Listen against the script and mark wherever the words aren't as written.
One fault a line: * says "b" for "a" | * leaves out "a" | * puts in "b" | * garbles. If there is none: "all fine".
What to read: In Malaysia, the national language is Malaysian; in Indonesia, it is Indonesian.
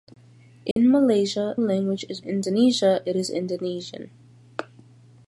* leaves out "the national"
* leaves out "Malaysian in"